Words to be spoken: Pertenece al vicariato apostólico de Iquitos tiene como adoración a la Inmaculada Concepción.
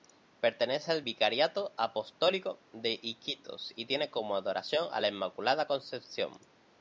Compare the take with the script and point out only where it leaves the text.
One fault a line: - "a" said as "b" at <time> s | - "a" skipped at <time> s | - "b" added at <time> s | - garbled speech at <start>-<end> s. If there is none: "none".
- "y" added at 3.7 s